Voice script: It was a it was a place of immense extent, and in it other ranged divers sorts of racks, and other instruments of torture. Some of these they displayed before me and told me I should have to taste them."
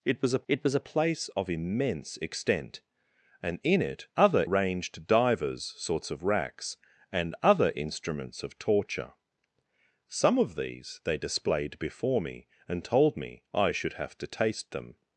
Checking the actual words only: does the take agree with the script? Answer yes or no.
yes